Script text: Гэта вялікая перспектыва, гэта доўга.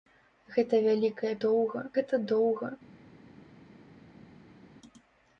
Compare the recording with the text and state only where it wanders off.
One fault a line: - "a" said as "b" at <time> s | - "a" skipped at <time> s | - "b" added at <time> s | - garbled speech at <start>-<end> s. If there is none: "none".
- "перспектыва" said as "доўга" at 1.4 s